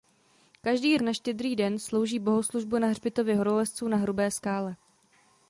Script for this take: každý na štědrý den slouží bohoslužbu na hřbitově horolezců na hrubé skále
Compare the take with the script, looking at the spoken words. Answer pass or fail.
pass